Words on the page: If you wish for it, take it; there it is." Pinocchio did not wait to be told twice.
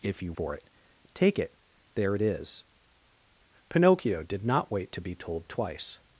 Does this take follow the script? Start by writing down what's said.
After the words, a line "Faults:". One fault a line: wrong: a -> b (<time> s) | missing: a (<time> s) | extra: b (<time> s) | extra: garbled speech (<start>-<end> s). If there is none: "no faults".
If you for it, take it; there it is." Pinocchio did not wait to be told twice.
Faults:
missing: wish (0.3 s)